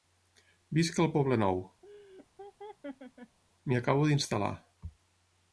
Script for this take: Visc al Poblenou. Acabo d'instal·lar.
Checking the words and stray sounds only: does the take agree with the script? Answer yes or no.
no